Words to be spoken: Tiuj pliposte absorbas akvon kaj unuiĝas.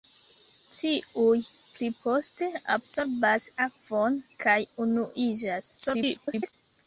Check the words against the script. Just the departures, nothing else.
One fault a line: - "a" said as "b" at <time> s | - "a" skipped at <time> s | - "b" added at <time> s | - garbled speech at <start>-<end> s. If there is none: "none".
- garbled speech at 5.8-6.5 s